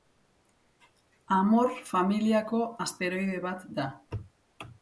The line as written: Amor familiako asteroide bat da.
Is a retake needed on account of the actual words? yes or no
no